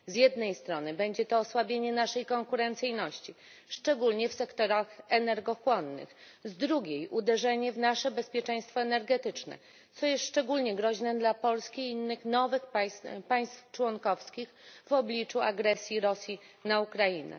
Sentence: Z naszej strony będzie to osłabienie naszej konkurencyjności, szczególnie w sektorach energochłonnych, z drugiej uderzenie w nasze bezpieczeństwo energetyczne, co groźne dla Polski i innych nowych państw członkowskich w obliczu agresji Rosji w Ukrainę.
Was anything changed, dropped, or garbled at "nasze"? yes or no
no